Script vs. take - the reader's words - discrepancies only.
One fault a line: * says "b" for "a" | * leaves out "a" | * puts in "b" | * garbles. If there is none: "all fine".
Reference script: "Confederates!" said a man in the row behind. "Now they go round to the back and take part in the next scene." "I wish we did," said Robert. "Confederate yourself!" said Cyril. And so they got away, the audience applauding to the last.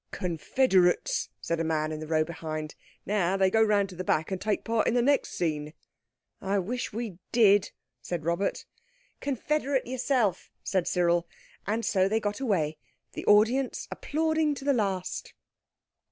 all fine